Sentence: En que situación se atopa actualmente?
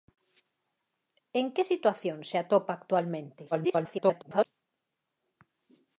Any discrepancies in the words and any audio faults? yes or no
yes